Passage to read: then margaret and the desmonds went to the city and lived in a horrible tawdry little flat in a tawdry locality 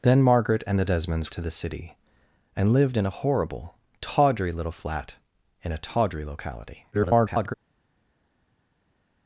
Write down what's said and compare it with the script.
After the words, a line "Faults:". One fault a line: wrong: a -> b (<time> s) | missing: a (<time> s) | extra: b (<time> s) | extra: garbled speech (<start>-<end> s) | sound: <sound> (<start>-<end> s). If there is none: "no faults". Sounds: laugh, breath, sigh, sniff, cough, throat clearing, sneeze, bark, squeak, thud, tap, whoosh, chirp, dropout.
then margaret and the desmonds to the city and lived in a horrible tawdry little flat in a tawdry locality [garbled]
Faults:
missing: went (1.3 s)
extra: garbled speech (6.9-7.5 s)